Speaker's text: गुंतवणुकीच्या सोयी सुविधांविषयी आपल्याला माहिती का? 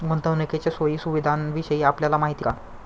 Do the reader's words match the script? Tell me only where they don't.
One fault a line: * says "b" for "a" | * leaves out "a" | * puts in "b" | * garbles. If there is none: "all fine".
all fine